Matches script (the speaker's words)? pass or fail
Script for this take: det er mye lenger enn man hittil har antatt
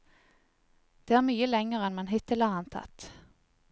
pass